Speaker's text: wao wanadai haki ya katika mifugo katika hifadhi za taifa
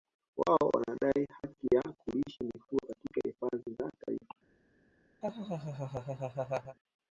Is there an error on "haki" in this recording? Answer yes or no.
no